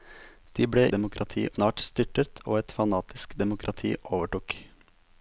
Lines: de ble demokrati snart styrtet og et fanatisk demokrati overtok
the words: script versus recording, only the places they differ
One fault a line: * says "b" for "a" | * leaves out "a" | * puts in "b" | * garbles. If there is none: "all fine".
all fine